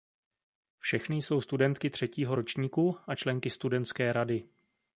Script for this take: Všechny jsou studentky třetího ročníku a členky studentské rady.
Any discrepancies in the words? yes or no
no